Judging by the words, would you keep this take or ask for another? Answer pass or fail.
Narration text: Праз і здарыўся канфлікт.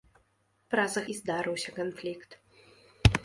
pass